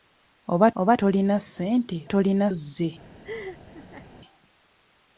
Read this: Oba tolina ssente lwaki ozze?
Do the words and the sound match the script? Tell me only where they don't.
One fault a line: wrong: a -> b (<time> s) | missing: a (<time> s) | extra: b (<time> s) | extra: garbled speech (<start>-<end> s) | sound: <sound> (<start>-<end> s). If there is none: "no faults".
extra: oba (0.8 s)
wrong: lwaki -> tolina (2.1 s)
sound: laugh (3.2-4.1 s)